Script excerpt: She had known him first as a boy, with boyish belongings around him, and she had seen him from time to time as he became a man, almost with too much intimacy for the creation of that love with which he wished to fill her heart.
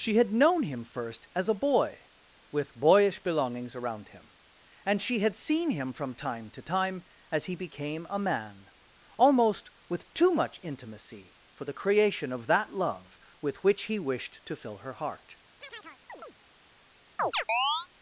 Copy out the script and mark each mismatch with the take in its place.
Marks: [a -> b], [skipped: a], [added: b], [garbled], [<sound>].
She had known him first as a boy, with boyish belongings around him, and she had seen him from time to time as he became a man, almost with too much intimacy for the creation of that love with which he wished to fill her heart. [chirp] [chirp]